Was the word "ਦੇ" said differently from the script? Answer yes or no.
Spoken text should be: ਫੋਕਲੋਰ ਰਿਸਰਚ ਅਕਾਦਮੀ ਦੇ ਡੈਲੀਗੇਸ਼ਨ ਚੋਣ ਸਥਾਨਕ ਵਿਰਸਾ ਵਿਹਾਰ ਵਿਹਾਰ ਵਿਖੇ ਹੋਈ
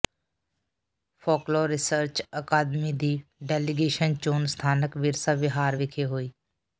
yes